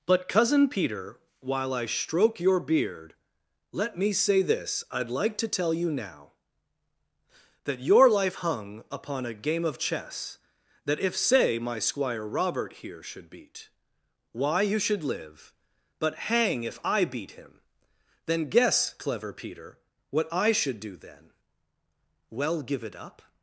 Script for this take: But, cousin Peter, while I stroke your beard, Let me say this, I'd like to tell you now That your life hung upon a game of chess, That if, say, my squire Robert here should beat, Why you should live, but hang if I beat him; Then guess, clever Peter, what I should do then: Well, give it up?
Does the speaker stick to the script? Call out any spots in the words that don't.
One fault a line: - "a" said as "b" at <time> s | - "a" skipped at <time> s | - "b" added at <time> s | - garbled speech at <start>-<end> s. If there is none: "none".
none